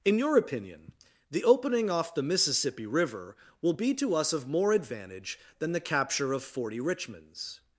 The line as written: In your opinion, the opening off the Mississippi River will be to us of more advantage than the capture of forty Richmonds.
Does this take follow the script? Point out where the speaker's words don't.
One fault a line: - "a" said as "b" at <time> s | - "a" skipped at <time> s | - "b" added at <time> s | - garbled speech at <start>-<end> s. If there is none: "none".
none